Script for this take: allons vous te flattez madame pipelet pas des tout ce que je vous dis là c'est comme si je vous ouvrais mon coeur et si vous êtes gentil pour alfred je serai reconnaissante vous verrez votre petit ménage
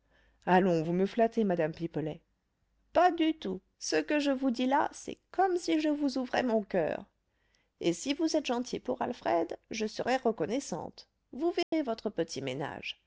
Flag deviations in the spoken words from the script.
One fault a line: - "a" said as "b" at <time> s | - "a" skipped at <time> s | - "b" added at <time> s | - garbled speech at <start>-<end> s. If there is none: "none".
- "te" said as "me" at 0.9 s
- "des" said as "du" at 3.1 s